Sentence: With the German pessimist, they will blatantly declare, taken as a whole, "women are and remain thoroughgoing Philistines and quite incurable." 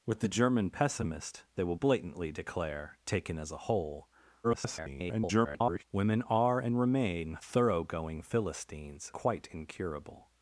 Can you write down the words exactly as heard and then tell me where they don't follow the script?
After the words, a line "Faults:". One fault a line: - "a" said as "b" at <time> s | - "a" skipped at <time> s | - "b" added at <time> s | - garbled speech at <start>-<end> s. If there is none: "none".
With the German pessimist, they will blatantly declare, taken as a whole, [garbled] "women are and remain thoroughgoing Philistines quite incurable."
Faults:
- garbled speech at 4.4-5.8 s
- "and" skipped at 9.1 s